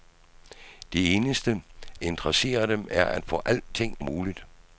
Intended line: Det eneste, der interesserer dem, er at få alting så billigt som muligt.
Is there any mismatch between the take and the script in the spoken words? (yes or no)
yes